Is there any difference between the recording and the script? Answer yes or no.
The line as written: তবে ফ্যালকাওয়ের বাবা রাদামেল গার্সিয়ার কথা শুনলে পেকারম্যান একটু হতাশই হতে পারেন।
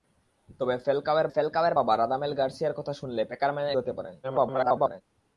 yes